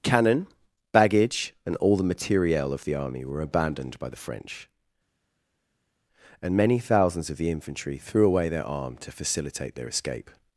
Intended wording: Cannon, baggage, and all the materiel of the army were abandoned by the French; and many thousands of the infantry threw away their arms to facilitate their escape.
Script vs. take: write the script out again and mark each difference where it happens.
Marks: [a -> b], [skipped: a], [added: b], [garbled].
Cannon, baggage, and all the materiel of the army were abandoned by the French; and many thousands of the infantry threw away their [arms -> arm] to facilitate their escape.